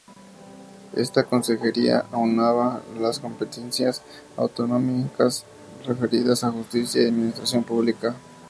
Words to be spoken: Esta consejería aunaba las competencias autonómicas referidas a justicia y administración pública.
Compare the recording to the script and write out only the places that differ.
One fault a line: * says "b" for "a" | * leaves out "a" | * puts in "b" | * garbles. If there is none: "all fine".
all fine